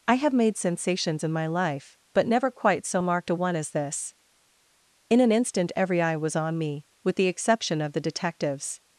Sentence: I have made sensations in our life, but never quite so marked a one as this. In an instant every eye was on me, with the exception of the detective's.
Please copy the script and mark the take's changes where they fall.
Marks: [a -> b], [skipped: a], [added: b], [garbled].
I have made sensations in [our -> my] life, but never quite so marked a one as this. In an instant every eye was on me, with the exception of the detective's.